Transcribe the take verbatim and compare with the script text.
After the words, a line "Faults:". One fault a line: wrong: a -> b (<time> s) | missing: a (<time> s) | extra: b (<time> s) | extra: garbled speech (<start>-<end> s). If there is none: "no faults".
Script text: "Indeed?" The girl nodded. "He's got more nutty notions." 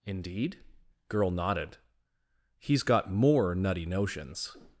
"Indeed?" girl nodded. "He's got more nutty notions."
Faults:
missing: The (0.6 s)